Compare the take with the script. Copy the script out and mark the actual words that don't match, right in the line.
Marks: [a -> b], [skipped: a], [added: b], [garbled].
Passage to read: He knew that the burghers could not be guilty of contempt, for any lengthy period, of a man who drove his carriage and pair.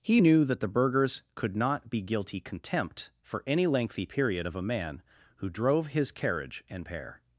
He knew that the burghers could not be guilty [skipped: of] contempt, for any lengthy period, of a man who drove his carriage and pair.